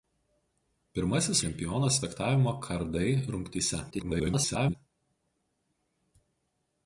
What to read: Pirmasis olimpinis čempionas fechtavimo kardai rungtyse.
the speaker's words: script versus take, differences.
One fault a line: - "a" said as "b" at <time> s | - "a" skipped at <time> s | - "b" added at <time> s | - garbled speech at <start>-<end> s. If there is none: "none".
- "olimpinis" skipped at 1.4 s
- garbled speech at 3.9-4.7 s